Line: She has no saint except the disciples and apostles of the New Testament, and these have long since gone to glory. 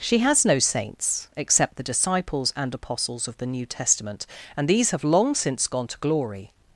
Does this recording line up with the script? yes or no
no